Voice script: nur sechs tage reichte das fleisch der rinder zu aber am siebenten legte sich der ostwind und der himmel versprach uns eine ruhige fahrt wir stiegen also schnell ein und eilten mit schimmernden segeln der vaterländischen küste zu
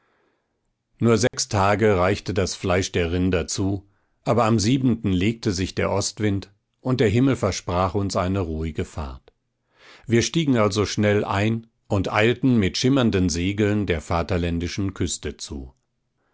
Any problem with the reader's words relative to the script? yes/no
no